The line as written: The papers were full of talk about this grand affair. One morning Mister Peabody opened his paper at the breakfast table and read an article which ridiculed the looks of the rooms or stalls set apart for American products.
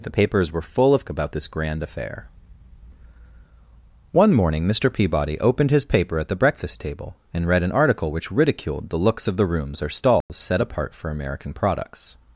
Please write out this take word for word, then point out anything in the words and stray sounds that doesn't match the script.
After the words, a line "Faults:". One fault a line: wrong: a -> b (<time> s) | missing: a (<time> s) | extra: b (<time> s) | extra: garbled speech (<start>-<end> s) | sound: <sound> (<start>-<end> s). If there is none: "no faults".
The papers were full of about this grand affair. One morning Mister Peabody opened his paper at the breakfast table and read an article which ridiculed the looks of the rooms or stalls set apart for American products.
Faults:
missing: talk (1.1 s)
sound: dropout (10.2-10.3 s)